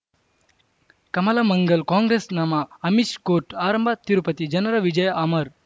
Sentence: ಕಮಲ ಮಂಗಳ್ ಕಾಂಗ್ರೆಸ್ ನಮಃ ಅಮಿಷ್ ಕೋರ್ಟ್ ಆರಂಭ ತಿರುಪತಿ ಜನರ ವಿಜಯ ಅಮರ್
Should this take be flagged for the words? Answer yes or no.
no